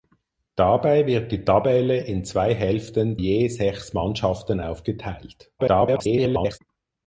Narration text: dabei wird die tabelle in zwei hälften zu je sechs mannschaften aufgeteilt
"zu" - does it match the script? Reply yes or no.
no